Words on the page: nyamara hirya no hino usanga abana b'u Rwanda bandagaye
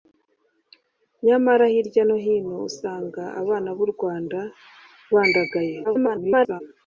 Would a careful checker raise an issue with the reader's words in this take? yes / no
yes